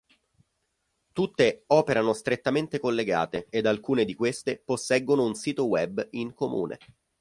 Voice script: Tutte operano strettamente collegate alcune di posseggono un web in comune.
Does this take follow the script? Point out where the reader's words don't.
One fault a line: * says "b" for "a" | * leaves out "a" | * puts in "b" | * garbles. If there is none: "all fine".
* puts in "ed"
* puts in "queste"
* puts in "sito"